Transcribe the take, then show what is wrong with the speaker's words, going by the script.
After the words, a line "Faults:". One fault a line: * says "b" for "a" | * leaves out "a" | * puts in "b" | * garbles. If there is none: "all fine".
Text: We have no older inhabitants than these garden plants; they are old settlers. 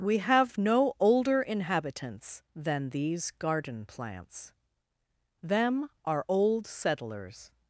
We have no older inhabitants than these garden plants; them are old settlers.
Faults:
* says "them" for "they"